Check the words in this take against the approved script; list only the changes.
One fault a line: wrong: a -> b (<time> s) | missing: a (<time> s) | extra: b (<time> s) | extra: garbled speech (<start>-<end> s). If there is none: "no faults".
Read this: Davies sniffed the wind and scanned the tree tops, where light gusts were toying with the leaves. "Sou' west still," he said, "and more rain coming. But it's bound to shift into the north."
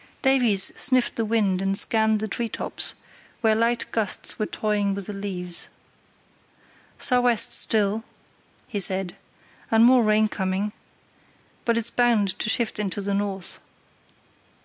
no faults